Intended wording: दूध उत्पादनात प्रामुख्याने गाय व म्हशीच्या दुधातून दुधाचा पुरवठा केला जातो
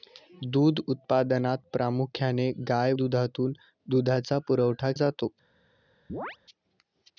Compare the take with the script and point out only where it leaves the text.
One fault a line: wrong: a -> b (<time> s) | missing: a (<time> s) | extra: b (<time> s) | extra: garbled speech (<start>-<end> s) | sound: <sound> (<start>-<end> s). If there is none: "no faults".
missing: व म्हशीच्या (2.9 s)
missing: केला (4.9 s)
sound: chirp (6.1-6.4 s)